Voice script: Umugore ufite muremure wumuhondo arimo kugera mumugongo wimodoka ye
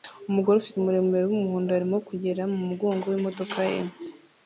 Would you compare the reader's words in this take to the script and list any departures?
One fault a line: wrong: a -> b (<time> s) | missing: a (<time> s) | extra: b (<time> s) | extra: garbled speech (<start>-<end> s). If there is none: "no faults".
no faults